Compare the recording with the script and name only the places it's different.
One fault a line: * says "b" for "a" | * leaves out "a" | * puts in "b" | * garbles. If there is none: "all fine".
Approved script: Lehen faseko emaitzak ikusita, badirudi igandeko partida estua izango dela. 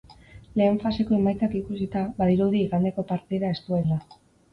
* leaves out "izango"